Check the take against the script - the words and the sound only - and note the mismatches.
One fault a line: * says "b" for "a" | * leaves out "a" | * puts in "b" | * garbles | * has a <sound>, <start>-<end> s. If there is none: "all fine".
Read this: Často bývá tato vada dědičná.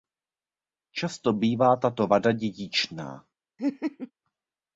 * has a laugh, 3.6-4.1 s